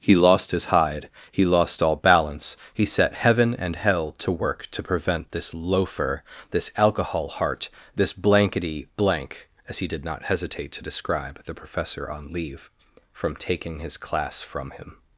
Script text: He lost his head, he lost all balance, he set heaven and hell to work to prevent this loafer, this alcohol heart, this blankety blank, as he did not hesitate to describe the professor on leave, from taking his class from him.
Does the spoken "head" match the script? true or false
false